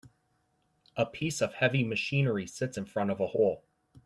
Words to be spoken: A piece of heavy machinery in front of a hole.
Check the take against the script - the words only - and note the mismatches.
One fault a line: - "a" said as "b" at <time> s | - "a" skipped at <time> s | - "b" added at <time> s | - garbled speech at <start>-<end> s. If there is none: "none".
- "sits" added at 2.5 s